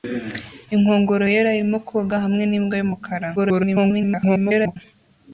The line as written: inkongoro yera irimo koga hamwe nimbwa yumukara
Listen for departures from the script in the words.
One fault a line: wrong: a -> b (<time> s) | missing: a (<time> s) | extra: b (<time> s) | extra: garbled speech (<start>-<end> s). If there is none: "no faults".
extra: garbled speech (3.4-4.8 s)